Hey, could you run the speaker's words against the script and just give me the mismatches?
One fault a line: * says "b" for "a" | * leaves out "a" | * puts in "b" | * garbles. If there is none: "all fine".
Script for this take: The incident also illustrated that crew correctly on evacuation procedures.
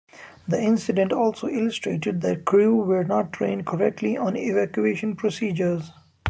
* puts in "were not trained"